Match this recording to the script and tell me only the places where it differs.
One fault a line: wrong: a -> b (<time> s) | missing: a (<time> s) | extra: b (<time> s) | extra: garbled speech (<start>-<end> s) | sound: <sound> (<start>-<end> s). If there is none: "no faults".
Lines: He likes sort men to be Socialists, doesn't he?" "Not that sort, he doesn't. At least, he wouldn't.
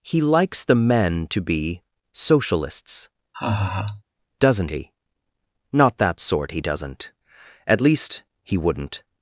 wrong: sort -> the (0.6 s)
sound: laugh (3.3-4.0 s)